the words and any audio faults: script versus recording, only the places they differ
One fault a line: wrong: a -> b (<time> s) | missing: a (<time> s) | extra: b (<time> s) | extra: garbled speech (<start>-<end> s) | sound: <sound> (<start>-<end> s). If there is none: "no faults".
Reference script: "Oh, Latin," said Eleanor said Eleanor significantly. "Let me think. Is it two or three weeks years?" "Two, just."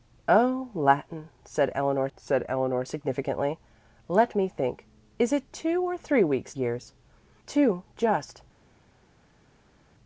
no faults